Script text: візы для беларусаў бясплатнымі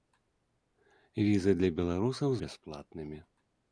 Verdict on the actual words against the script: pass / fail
pass